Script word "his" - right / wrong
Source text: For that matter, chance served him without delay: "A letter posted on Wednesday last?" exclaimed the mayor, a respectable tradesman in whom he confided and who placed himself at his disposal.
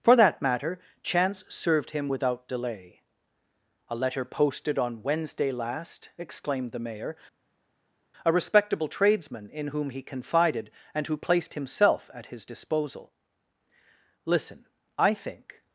right